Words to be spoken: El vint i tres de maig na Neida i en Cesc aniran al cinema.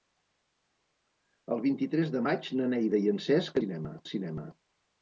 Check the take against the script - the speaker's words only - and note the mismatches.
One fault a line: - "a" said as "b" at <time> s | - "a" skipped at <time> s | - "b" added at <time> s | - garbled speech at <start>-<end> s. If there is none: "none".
- "aniran" said as "cinema" at 3.6 s